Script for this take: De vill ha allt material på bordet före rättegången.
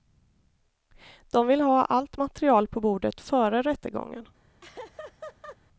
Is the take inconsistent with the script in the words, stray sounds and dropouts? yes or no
yes